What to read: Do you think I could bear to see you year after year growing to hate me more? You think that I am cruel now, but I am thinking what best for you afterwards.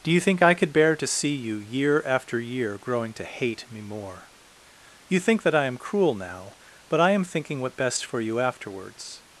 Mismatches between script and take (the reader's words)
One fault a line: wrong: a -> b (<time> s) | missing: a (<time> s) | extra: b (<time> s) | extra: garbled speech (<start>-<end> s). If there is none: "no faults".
no faults